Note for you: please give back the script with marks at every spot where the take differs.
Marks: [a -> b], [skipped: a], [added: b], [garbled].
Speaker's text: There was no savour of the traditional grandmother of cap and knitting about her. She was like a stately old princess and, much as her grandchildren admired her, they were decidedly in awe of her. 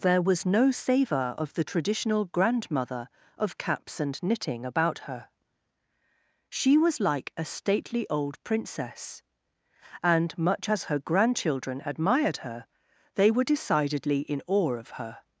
There was no savour of the traditional grandmother of [cap -> caps] and knitting about her. She was like a stately old princess and, much as her grandchildren admired her, they were decidedly in awe of her.